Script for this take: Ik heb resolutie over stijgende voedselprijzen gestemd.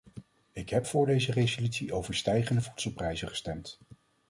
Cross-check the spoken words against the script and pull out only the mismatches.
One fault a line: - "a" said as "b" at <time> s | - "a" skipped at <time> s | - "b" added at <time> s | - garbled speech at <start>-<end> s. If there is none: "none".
- "voor deze" added at 0.8 s